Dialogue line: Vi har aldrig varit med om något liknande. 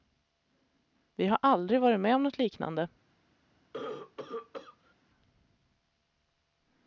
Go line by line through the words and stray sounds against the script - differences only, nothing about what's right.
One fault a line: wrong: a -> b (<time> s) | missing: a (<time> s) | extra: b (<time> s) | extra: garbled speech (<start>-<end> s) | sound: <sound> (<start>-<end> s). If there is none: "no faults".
sound: cough (3.7-4.9 s)